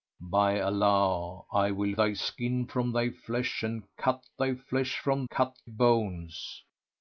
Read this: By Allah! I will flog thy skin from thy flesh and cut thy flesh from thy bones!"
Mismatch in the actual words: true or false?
true